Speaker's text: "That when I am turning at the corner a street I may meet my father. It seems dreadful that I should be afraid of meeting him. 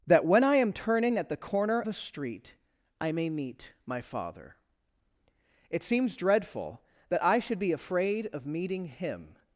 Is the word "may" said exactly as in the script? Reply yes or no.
yes